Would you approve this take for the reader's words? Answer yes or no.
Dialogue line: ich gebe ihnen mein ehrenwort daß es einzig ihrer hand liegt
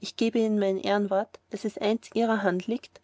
yes